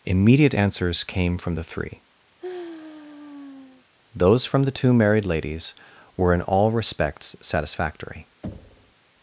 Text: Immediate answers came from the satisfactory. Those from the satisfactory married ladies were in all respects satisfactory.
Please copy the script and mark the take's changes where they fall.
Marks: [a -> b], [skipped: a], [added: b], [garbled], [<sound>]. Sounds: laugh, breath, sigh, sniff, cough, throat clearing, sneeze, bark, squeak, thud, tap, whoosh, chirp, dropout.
Immediate answers came from the [satisfactory. -> three] [sigh] Those from the [satisfactory -> two] married ladies were in all respects satisfactory. [thud]